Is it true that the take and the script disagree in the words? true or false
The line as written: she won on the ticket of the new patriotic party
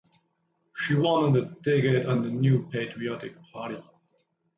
false